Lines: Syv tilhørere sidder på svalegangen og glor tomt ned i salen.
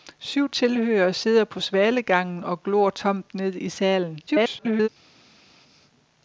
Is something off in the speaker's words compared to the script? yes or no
yes